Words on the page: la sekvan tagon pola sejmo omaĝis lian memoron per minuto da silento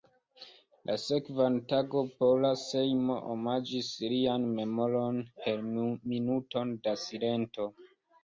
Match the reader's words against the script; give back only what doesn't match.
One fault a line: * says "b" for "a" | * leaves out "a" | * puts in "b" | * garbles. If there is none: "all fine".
all fine